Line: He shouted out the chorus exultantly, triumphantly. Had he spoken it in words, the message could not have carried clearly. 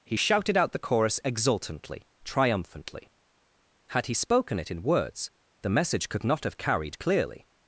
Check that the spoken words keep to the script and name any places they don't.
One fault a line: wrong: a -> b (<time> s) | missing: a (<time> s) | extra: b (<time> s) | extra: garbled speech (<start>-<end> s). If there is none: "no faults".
no faults